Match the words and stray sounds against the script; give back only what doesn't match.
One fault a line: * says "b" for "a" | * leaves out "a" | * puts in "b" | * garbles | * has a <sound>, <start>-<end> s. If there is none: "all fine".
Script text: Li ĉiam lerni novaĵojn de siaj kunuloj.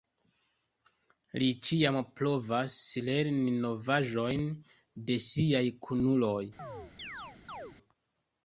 * puts in "provas"
* has a chirp, 6.6-7.8 s